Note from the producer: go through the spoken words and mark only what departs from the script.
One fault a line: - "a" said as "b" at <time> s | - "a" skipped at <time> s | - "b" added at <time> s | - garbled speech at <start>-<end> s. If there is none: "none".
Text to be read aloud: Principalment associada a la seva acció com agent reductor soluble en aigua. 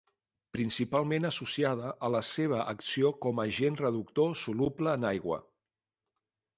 none